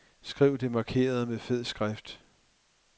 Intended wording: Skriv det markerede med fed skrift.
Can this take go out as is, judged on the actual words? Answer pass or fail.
pass